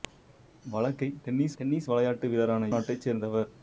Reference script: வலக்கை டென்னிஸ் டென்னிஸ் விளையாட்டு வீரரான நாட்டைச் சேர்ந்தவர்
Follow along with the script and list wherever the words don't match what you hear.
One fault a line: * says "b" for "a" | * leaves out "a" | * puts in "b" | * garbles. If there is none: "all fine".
all fine